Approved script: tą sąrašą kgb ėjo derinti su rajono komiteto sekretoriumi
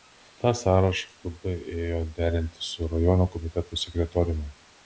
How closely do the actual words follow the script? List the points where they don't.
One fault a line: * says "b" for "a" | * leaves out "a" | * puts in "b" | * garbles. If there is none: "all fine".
all fine